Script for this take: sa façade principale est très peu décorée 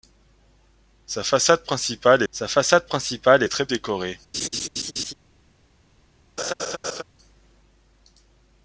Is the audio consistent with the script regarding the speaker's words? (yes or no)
no